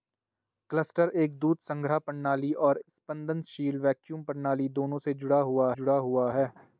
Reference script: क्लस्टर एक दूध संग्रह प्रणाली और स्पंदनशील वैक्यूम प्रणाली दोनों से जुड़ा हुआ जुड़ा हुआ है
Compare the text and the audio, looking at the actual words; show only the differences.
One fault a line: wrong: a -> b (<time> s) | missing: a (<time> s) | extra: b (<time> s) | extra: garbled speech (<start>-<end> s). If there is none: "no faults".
no faults